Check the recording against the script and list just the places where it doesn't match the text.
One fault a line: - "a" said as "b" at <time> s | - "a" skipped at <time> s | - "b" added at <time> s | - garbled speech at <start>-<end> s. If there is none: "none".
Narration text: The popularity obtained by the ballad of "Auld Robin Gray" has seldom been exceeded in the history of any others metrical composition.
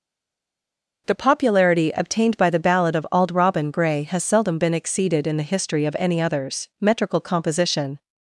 none